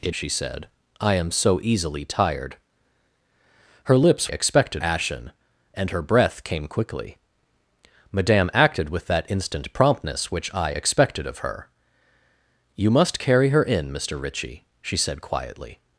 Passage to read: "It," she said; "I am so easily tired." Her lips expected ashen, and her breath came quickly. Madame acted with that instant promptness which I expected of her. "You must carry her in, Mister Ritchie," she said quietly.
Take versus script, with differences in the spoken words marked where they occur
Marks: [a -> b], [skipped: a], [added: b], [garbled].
"It," she said; "I am so easily tired." Her lips expected ashen, and her breath came quickly. Madame acted with that instant promptness which I expected of her. "You must carry her in, Mister Ritchie," she said quietly.